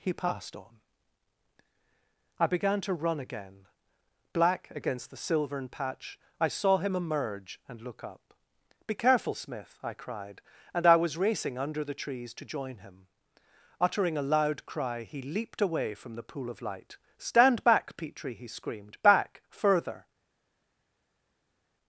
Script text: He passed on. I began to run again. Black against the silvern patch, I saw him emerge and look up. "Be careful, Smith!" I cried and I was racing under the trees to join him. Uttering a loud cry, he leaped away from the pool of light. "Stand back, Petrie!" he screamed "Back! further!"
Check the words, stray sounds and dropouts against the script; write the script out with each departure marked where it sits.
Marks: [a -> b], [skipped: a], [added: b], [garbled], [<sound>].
He passed on. I began to run again. Black against the silvern patch, I saw him emerge and look up. "Be careful, Smith!" I cried and I was racing under the trees to join him. Uttering a loud cry, he leaped away from the pool of light. "Stand back, Petrie!" he screamed "Back! further!"